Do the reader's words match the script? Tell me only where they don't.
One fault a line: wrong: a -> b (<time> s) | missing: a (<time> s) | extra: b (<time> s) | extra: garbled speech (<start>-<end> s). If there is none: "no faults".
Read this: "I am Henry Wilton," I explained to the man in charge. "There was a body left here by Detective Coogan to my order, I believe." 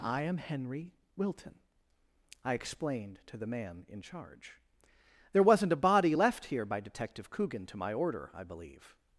wrong: was -> wasn't (5.4 s)